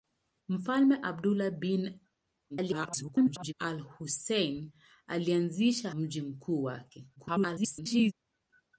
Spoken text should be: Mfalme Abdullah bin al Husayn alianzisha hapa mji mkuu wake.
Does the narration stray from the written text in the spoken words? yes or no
yes